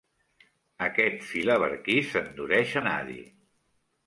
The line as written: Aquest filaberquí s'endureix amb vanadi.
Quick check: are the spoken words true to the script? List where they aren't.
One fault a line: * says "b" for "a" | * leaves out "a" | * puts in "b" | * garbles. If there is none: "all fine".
* leaves out "amb"